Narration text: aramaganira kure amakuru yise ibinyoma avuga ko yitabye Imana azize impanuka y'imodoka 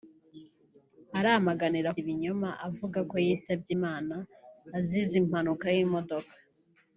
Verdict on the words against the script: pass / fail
fail